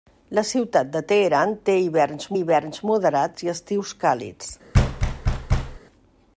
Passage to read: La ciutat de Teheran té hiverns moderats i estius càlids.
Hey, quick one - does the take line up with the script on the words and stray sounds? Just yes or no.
no